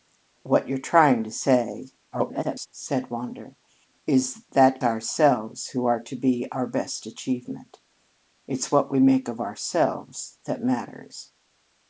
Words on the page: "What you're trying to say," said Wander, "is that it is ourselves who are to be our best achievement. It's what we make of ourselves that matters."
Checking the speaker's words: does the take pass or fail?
fail